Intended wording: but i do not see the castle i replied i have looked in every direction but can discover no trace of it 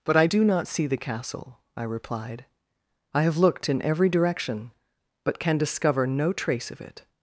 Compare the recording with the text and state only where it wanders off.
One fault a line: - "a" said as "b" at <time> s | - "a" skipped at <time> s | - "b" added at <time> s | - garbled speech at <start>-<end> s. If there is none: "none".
none